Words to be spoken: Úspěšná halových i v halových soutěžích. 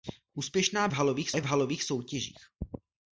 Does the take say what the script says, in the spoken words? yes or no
yes